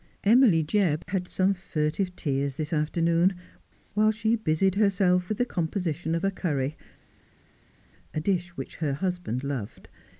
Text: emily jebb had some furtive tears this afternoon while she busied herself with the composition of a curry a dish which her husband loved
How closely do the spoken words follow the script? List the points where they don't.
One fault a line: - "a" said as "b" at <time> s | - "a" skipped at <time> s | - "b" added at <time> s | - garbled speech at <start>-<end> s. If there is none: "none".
none